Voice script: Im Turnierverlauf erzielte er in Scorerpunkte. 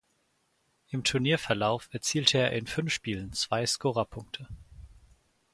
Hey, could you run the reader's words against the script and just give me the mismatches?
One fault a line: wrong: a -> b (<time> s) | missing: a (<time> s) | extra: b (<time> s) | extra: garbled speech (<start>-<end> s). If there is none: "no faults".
extra: fünf Spielen zwei (2.7 s)